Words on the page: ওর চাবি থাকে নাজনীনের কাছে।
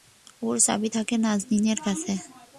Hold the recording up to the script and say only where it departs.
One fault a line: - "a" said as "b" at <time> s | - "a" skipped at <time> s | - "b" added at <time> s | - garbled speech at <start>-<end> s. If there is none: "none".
none